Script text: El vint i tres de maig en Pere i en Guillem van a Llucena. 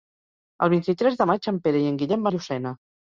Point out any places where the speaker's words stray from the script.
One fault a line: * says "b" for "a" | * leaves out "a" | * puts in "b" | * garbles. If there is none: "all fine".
* leaves out "van"